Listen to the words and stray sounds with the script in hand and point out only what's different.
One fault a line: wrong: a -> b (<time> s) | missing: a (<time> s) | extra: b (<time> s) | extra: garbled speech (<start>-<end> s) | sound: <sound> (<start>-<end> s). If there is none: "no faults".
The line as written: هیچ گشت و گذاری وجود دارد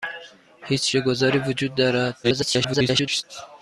missing: گشت (1.0 s)
extra: garbled speech (2.2-3.2 s)